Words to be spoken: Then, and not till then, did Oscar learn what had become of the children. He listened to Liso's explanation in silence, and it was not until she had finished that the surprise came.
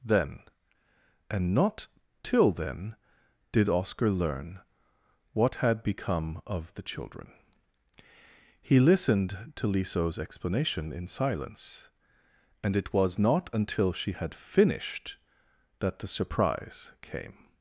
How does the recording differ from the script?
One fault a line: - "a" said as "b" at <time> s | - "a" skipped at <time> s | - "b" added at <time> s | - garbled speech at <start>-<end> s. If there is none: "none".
none